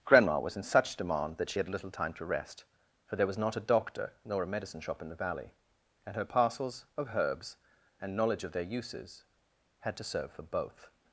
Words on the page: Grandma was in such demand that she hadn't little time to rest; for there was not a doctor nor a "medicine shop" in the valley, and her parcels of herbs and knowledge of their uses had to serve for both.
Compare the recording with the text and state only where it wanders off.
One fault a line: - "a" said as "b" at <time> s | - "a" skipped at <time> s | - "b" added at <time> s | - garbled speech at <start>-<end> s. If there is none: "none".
- "hadn't" said as "had" at 1.6 s